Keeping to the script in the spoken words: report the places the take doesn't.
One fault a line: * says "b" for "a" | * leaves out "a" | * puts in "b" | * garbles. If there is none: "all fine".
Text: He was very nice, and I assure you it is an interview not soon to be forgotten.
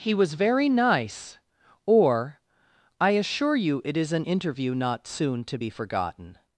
* says "or" for "and"